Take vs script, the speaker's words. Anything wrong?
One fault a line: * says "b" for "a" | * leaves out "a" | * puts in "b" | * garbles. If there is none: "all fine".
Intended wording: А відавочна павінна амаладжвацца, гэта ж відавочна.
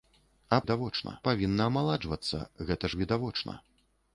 all fine